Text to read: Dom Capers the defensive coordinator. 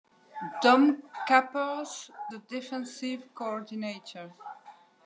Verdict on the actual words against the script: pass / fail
pass